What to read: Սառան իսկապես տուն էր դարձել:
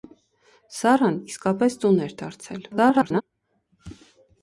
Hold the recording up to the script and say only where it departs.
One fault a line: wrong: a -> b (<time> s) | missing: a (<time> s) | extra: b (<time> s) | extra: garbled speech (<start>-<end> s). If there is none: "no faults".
extra: garbled speech (2.7-3.2 s)